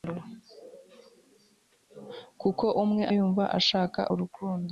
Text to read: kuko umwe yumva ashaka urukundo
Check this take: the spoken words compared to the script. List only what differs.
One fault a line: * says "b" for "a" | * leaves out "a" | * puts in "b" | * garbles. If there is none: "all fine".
all fine